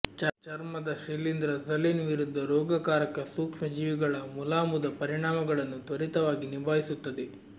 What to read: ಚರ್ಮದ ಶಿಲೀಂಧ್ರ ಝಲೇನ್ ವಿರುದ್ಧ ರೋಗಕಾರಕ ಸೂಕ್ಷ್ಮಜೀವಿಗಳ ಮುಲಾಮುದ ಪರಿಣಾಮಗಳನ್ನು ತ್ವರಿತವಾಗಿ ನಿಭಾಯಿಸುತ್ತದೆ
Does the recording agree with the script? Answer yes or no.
yes